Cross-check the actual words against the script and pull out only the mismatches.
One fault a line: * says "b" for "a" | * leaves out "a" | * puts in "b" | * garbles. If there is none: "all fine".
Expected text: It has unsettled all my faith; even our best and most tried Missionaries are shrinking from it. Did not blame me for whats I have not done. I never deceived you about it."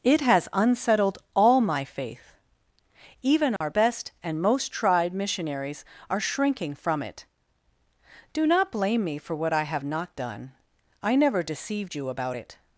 * says "Do" for "Did"
* says "what" for "whats"